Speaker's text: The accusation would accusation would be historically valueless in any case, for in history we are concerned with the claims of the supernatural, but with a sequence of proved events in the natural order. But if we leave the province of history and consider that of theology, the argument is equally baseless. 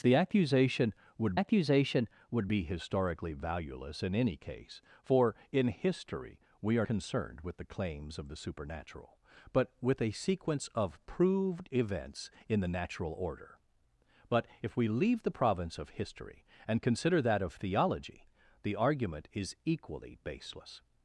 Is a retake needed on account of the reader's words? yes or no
no